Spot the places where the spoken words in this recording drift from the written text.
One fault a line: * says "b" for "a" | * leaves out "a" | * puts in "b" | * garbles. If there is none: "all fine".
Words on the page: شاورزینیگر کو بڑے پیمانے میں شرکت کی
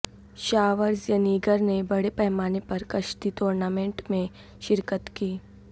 * says "نے" for "کو"
* puts in "پر کشتی ٹورنامنٹ"